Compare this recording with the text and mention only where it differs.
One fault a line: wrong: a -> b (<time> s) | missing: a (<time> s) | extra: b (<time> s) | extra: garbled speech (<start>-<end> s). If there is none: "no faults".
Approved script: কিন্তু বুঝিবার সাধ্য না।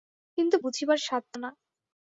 no faults